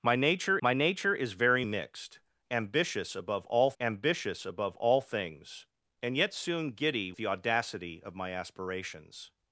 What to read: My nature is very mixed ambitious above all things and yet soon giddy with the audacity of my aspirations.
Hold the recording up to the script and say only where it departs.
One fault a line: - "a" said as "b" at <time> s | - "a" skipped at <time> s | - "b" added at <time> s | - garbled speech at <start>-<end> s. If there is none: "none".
- "my nature" added at 0.6 s
- "ambitious above all" added at 3.8 s
- "with" skipped at 7.1 s